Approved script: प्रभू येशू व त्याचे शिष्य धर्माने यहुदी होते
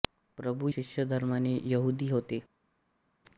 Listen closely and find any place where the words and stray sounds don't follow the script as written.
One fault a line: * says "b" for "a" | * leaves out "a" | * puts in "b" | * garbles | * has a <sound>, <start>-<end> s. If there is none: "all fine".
* leaves out "येशू व त्याचे"